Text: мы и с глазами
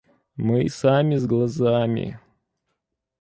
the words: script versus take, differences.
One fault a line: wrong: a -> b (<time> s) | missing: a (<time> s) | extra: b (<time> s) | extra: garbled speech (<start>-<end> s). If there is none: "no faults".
extra: сами (0.7 s)